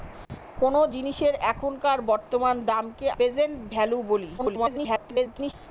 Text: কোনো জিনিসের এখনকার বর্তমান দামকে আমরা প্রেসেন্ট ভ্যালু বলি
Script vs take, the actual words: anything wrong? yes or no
yes